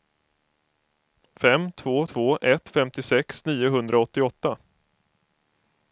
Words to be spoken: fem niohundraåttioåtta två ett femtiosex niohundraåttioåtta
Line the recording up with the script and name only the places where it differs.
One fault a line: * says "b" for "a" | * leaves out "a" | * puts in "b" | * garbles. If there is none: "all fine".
* says "två" for "niohundraåttioåtta"